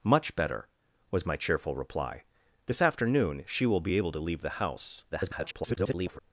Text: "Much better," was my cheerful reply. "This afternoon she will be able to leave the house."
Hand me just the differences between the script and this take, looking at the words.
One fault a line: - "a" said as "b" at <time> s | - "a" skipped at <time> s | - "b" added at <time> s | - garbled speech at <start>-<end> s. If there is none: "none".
- garbled speech at 5.1-6.2 s